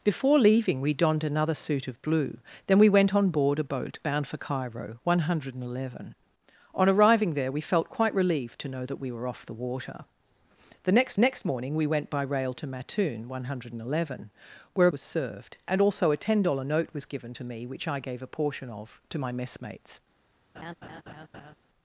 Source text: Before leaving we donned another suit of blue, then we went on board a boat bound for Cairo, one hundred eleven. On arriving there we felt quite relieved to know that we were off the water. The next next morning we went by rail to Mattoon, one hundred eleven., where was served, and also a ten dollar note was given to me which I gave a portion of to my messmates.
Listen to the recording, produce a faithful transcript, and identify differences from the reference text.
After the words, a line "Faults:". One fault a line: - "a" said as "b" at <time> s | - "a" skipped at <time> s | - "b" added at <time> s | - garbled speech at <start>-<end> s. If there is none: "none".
Before leaving we donned another suit of blue, then we went on board a boat bound for Cairo, one hundred eleven. On arriving there we felt quite relieved to know that we were off the water. The next next morning we went by rail to Mattoon, one hundred eleven., where was served, and also a ten dollar note was given to me which I gave a portion of to my messmates.
Faults:
none